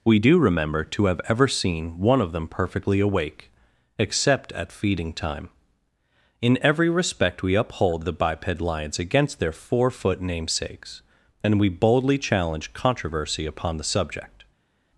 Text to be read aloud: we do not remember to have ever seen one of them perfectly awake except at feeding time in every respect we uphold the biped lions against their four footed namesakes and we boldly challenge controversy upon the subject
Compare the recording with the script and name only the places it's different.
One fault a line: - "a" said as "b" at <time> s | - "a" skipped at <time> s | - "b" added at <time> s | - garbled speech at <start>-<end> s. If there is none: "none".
- "not" skipped at 0.4 s
- "footed" said as "foot" at 9.9 s